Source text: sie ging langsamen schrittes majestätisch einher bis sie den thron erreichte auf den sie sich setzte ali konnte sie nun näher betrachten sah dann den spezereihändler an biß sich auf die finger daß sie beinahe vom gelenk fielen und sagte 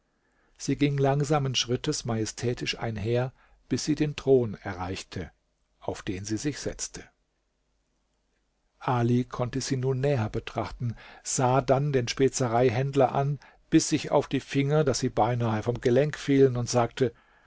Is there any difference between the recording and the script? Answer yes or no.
no